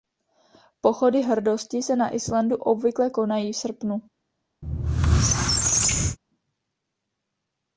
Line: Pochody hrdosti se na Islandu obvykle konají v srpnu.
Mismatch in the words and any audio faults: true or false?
true